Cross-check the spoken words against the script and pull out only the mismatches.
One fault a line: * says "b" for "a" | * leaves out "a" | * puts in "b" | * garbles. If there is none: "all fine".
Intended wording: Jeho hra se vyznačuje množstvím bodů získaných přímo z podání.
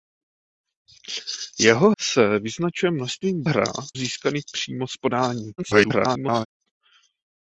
* leaves out "hra"
* says "hra" for "bodů"
* garbles